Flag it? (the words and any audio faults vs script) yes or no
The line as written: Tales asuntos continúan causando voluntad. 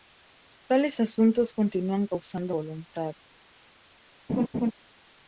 yes